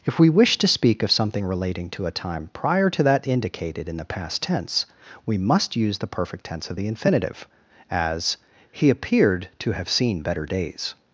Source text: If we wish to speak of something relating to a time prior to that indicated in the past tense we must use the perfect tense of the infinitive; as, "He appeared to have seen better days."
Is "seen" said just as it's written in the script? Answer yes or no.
yes